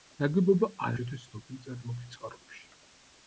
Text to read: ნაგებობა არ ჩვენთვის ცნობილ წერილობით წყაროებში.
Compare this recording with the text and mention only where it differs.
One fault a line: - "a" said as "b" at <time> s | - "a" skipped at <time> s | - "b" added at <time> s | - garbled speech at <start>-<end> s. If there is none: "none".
none